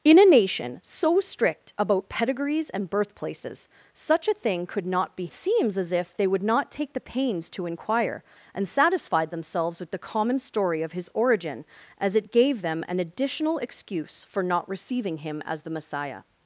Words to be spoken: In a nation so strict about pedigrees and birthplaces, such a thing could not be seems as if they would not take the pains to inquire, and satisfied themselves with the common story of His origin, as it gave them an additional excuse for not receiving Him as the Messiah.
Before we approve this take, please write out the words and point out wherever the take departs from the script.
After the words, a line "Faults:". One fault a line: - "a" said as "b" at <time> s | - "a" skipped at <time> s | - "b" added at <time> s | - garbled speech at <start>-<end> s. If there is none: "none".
In a nation so strict about pedigrees and birthplaces, such a thing could not be seems as if they would not take the pains to inquire, and satisfied themselves with the common story of His origin, as it gave them an additional excuse for not receiving Him as the Messiah.
Faults:
none